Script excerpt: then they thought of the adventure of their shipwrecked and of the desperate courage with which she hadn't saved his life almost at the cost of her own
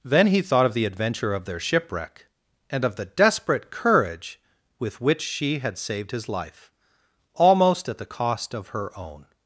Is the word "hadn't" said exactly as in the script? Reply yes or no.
no